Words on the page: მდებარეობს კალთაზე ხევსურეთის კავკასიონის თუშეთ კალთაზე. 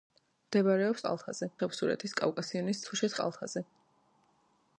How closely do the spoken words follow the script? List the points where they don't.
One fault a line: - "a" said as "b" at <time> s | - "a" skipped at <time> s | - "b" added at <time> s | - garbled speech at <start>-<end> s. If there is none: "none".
none